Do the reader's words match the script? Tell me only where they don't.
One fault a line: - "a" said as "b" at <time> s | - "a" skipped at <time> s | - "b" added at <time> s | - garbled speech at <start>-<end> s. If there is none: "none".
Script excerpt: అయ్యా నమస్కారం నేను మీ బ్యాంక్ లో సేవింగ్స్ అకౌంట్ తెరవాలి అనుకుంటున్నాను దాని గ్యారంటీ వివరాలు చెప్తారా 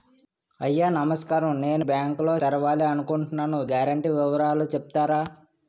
- "మీ" skipped at 1.9 s
- "సేవింగ్స్ అకౌంట్" skipped at 2.3 s
- "దాని" skipped at 3.6 s